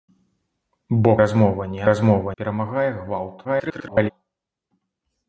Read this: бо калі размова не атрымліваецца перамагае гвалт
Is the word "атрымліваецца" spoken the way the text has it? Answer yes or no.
no